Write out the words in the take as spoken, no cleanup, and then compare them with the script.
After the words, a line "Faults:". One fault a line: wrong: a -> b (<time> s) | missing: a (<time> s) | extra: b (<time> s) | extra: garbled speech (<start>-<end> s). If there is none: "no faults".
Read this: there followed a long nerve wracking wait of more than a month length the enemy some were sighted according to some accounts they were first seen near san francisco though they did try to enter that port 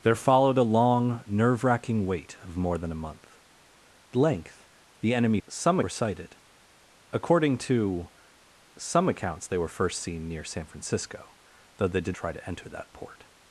there followed a long nerve wracking wait of more than a month length the enemy some were sighted according to some accounts they were first seen near san francisco though they did try to enter that port
Faults:
no faults